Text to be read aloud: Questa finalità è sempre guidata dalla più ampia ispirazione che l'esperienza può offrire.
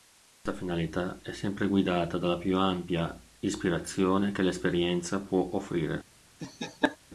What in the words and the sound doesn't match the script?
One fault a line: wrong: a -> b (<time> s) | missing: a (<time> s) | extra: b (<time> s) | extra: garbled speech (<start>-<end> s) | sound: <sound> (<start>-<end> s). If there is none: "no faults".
sound: laugh (6.4-7.0 s)